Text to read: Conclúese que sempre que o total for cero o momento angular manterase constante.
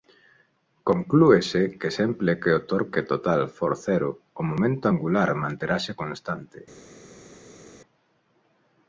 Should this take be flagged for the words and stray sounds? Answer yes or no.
yes